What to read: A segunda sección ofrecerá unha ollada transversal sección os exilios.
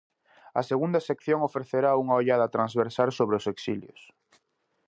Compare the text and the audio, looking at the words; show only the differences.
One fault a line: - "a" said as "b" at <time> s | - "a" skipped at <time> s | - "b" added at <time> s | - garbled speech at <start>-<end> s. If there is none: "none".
- "sección" said as "sobre" at 3.2 s